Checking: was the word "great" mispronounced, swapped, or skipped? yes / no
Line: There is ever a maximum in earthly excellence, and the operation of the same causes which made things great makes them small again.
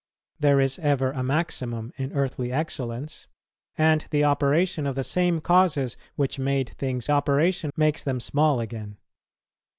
yes